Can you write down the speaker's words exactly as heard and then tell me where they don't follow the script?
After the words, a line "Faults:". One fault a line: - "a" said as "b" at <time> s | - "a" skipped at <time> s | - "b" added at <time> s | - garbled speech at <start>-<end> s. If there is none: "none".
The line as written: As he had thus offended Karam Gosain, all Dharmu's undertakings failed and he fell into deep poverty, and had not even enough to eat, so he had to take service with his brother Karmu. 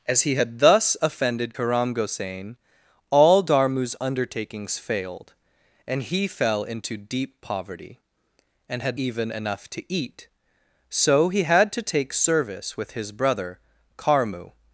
As he had thus offended Karam Gosain, all Dharmu's undertakings failed and he fell into deep poverty, and had even enough to eat, so he had to take service with his brother Karmu.
Faults:
- "not" skipped at 9.0 s